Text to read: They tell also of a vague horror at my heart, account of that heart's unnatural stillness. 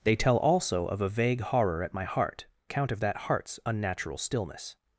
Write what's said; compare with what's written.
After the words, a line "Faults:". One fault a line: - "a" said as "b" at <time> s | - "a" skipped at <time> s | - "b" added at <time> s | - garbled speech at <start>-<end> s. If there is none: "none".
They tell also of a vague horror at my heart, account of that heart's unnatural stillness.
Faults:
none